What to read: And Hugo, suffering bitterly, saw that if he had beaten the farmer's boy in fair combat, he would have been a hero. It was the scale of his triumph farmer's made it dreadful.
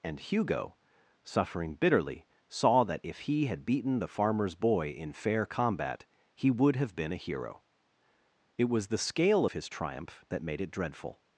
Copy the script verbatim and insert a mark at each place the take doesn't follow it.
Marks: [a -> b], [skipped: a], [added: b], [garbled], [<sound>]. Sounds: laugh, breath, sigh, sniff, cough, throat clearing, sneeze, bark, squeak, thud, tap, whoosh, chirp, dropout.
And Hugo, suffering bitterly, saw that if he had beaten the farmer's boy in fair combat, he would have been a hero. It was the scale of his triumph [farmer's -> that] made it dreadful.